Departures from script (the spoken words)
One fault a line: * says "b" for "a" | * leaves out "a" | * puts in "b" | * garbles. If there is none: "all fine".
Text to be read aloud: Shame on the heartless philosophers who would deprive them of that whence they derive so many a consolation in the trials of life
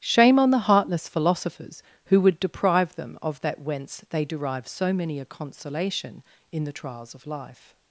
all fine